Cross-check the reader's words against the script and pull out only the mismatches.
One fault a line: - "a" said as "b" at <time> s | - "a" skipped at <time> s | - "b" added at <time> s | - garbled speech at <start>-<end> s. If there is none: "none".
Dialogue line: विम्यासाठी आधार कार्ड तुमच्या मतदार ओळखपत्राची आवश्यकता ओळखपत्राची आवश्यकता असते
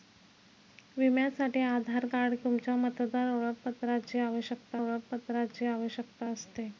none